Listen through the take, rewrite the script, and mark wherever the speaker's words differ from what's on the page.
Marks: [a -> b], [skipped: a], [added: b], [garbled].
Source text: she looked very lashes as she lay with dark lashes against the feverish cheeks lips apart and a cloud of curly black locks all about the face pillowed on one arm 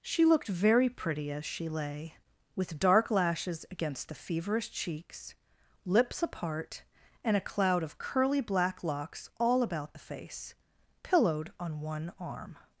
she looked very [lashes -> pretty] as she lay with dark lashes against the feverish cheeks lips apart and a cloud of curly black locks all about the face pillowed on one arm